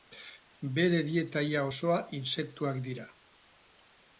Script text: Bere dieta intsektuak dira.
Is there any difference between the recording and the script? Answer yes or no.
yes